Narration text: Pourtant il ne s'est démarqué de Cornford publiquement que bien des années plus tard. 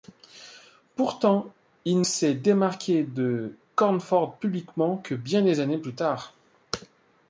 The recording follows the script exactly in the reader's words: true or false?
false